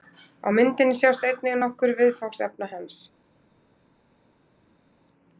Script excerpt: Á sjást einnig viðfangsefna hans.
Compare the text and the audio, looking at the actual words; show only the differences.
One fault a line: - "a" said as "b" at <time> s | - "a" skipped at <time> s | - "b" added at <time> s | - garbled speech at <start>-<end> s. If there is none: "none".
- "myndinni" added at 0.6 s
- "nokkur" added at 1.6 s